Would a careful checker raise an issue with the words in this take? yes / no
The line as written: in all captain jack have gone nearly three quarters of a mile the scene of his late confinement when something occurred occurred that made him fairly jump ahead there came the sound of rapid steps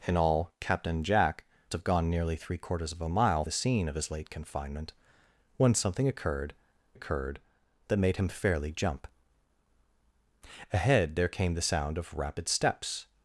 no